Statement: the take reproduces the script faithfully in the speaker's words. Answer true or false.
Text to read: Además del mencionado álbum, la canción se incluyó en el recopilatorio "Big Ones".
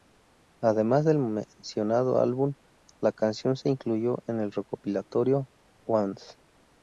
false